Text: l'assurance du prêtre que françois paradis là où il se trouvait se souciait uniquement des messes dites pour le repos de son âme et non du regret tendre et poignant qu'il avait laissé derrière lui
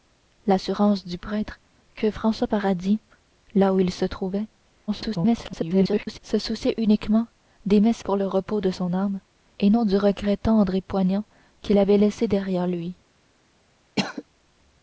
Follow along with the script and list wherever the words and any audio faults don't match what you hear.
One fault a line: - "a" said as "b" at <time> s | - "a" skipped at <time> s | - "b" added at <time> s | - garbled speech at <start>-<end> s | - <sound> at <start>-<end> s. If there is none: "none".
- garbled speech at 4.9-6.2 s
- "dites" skipped at 8.0 s
- cough at 14.0-14.2 s